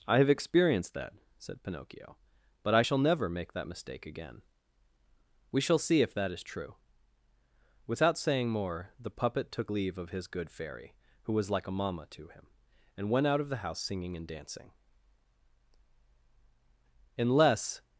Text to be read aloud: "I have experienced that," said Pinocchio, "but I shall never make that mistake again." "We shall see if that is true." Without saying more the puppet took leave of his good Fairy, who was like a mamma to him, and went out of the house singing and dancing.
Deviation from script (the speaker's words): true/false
true